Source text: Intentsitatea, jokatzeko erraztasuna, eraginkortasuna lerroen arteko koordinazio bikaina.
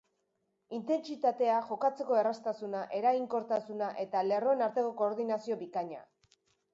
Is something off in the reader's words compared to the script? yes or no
yes